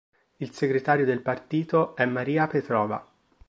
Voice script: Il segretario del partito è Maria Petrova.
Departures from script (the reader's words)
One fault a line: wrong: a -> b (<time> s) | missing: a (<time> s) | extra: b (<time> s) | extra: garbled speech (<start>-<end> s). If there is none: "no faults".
no faults